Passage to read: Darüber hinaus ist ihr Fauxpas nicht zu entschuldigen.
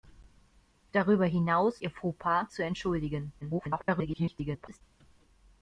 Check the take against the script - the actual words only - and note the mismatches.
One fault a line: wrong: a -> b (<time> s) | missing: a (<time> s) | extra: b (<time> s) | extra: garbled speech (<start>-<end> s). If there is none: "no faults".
missing: ist (1.8 s)
missing: nicht (2.5 s)
extra: garbled speech (3.4-4.8 s)